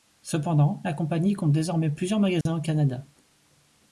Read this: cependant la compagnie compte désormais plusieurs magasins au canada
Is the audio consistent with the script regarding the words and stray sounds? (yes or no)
no